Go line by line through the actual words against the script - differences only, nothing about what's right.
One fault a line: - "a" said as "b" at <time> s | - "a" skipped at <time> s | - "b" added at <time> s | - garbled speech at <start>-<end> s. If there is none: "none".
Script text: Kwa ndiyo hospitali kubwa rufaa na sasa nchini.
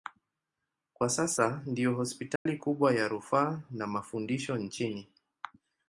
- "sasa" added at 1.1 s
- "ya" added at 2.9 s
- "sasa" said as "mafundisho" at 3.9 s